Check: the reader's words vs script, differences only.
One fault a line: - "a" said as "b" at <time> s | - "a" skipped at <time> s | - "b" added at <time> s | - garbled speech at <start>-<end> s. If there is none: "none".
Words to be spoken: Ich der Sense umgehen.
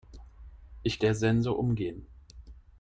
none